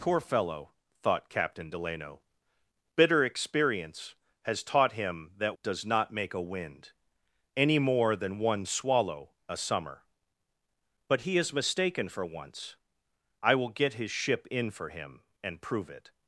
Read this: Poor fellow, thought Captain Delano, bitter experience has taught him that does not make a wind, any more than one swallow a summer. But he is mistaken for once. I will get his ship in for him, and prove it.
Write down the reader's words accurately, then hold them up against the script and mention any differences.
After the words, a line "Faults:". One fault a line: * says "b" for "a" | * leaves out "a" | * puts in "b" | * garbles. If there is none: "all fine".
Poor fellow, thought Captain Delano, bitter experience has taught him that does not make a wind, any more than one swallow a summer. But he is mistaken for once. I will get his ship in for him, and prove it.
Faults:
all fine